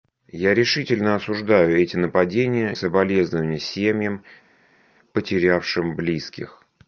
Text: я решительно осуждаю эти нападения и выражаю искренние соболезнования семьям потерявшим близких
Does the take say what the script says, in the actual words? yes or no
no